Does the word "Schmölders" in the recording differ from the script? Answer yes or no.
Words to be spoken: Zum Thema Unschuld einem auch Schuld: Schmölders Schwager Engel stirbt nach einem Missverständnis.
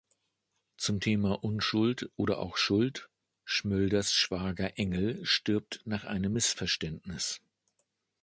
no